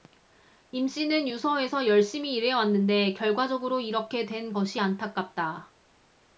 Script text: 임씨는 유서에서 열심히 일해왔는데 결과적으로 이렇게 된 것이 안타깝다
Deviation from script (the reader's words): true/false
false